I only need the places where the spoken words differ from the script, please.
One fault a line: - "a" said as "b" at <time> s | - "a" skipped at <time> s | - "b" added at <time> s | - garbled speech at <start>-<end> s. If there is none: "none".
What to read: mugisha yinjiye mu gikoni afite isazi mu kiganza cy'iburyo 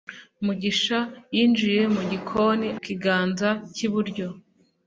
- "afite isazi mu" skipped at 2.7 s